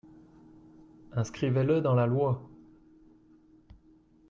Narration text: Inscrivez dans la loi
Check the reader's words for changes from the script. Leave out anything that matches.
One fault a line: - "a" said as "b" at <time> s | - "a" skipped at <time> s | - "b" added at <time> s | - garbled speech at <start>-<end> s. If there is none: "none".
- "le" added at 1.6 s